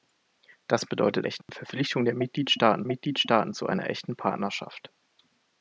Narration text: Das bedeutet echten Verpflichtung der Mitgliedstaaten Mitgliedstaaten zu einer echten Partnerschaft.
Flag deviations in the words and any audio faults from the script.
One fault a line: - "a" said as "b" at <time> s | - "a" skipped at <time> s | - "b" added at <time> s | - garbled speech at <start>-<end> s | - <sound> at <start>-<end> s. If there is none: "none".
- dropout at 1.4-1.5 s